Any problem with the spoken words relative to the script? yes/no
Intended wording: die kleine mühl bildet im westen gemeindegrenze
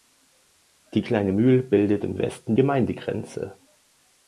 no